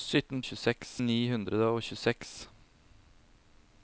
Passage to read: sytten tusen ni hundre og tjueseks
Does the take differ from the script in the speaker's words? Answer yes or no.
yes